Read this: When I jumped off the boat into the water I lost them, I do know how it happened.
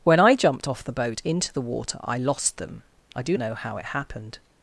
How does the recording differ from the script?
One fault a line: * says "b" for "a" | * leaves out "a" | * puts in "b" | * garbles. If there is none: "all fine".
all fine